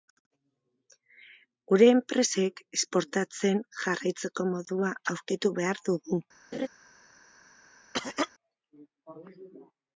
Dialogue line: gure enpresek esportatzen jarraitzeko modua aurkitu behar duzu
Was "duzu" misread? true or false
true